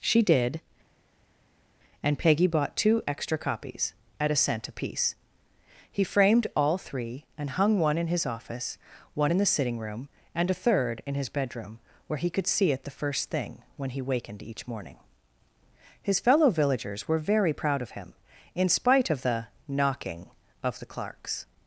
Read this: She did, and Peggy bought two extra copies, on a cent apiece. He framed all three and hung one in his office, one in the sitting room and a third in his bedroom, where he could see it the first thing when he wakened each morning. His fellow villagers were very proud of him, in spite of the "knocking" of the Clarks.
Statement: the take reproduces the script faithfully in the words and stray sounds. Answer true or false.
false